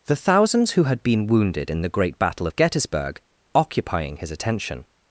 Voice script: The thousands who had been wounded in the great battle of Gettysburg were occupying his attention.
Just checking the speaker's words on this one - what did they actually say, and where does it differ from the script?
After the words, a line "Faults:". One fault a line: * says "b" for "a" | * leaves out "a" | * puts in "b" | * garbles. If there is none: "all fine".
The thousands who had been wounded in the great battle of Gettysburg occupying his attention.
Faults:
* leaves out "were"